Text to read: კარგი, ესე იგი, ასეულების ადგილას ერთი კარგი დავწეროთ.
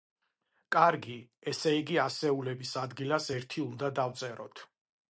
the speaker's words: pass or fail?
fail